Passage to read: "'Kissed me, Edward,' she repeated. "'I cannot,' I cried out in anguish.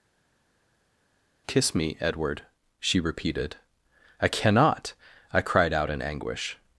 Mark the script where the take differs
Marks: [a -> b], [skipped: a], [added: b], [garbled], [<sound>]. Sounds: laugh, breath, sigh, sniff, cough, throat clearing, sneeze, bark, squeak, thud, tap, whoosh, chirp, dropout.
["'Kissed -> Kiss] me, Edward,' she repeated. "'I cannot,' I cried out in anguish.